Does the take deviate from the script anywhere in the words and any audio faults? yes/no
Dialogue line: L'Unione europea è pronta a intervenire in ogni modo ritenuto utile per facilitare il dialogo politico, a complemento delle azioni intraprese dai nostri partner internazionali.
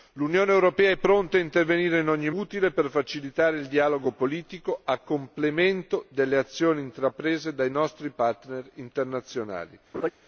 yes